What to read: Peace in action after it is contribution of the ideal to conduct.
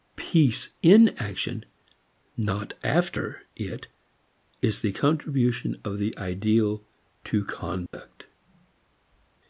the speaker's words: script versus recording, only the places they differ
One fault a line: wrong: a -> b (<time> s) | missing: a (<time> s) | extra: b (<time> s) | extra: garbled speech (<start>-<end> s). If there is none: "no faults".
extra: not (2.4 s)
extra: the (4.8 s)